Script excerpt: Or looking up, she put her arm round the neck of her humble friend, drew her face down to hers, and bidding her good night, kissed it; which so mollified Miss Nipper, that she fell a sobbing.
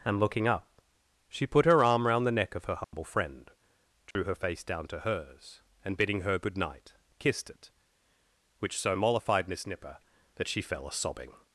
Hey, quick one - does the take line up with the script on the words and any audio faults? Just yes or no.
no